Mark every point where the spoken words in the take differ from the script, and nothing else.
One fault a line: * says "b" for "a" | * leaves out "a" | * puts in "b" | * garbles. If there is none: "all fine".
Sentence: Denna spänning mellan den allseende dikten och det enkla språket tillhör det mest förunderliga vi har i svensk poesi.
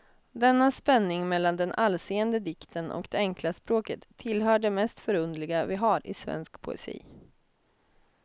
all fine